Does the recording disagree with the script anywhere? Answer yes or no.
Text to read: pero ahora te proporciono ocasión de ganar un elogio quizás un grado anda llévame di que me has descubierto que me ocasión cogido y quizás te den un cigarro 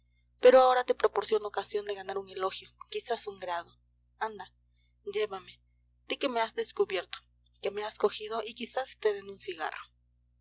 yes